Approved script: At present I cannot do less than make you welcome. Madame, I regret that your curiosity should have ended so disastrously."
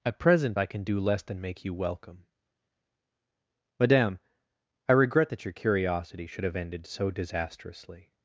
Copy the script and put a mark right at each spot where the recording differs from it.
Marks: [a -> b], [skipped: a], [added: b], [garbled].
At present I [cannot -> can] do less than make you welcome. Madame, I regret that your curiosity should have ended so disastrously."